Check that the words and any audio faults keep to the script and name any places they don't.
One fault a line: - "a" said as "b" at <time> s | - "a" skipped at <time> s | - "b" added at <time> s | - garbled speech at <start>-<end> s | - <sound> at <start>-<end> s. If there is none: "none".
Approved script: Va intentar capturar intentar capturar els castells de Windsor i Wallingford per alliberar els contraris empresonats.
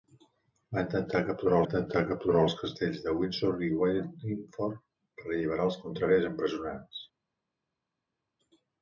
none